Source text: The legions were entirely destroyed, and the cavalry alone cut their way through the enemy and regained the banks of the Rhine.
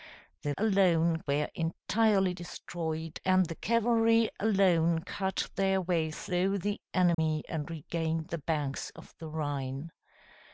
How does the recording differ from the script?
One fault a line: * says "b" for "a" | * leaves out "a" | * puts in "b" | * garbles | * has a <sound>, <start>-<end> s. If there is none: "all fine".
* says "alone" for "legions"
* has a dropout, 7.1-7.2 s